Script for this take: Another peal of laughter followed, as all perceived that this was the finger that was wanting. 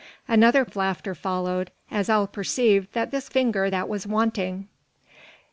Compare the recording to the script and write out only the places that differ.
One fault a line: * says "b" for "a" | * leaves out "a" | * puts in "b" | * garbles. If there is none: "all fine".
* leaves out "peal"
* leaves out "was the"